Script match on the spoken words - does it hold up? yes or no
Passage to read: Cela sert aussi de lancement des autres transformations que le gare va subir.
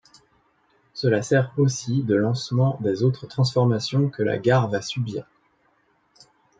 no